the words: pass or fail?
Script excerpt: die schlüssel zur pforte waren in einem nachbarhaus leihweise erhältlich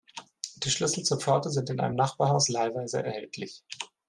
fail